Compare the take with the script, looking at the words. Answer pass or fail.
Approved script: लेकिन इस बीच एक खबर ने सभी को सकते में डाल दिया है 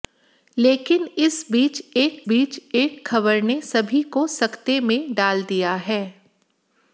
fail